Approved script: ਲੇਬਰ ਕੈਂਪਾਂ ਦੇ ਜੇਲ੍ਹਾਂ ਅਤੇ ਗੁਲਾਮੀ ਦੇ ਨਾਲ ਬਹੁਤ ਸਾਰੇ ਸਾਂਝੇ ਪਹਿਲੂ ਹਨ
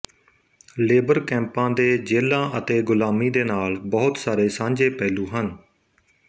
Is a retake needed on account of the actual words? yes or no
no